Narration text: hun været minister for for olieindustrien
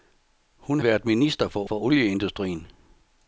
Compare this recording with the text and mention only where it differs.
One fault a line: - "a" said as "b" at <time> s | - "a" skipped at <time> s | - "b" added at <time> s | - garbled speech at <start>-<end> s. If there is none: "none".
none